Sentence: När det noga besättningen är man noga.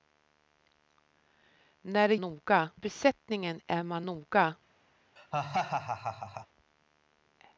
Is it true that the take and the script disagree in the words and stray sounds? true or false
true